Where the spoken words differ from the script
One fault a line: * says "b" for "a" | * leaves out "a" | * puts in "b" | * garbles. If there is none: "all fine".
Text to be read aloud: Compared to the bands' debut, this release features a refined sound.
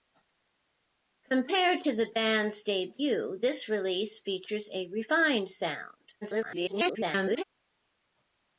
* garbles